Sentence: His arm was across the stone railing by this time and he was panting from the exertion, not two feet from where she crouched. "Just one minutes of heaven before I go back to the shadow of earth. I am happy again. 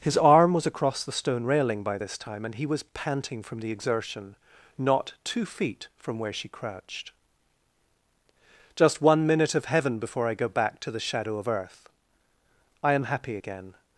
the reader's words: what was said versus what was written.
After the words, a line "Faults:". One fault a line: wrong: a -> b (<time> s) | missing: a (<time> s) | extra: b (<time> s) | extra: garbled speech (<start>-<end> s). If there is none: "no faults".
His arm was across the stone railing by this time and he was panting from the exertion, not two feet from where she crouched. "Just one minute of heaven before I go back to the shadow of earth. I am happy again.
Faults:
wrong: minutes -> minute (9.3 s)